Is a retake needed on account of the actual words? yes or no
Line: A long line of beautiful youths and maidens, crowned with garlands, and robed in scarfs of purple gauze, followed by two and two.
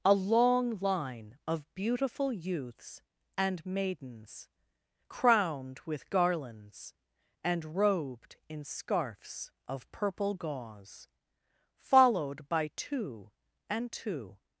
no